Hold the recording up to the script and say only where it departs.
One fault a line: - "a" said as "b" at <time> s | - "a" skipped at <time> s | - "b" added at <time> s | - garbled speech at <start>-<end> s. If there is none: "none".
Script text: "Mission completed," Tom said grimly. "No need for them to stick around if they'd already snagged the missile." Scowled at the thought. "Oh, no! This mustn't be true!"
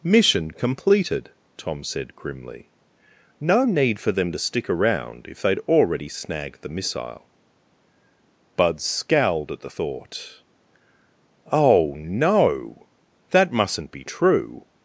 - "Bud" added at 8.5 s
- "This" said as "That" at 13.3 s